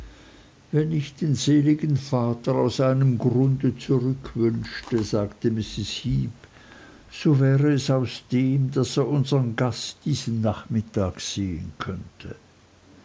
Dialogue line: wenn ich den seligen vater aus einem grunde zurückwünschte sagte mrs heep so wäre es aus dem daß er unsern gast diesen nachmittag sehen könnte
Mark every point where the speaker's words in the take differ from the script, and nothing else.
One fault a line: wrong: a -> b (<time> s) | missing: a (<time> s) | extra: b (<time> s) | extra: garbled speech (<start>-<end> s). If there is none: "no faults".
no faults